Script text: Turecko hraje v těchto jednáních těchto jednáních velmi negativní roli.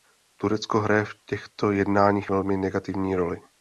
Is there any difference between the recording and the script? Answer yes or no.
yes